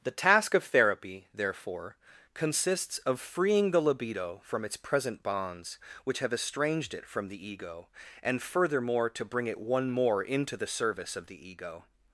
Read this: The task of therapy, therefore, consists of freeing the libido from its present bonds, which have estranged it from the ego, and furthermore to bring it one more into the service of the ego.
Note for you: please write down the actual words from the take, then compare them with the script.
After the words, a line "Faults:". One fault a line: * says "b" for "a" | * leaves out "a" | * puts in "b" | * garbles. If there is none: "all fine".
The task of therapy, therefore, consists of freeing the libido from its present bonds, which have estranged it from the ego, and furthermore to bring it one more into the service of the ego.
Faults:
all fine